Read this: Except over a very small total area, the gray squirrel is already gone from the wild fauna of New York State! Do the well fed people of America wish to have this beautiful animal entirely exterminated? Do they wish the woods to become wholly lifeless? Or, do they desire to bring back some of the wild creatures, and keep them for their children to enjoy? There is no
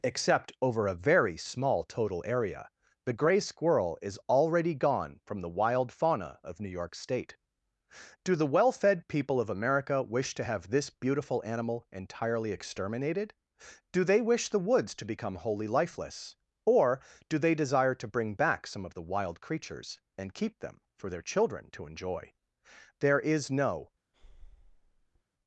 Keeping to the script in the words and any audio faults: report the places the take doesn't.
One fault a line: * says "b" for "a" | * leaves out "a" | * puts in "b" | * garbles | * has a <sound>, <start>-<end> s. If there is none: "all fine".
* has a breath, 24.1-25.2 s